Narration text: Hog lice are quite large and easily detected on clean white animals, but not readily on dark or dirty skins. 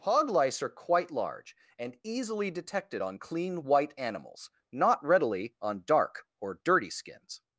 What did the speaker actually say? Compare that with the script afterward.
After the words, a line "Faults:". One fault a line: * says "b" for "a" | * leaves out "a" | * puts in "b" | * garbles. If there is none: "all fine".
Hog lice are quite large and easily detected on clean white animals, not readily on dark or dirty skins.
Faults:
* leaves out "but"